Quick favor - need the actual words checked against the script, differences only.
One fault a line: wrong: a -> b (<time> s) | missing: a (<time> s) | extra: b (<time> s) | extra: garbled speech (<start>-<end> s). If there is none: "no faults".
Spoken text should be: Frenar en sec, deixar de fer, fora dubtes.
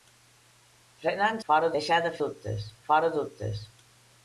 wrong: sec -> fora (1.5 s)
wrong: fer -> dubtes (2.2 s)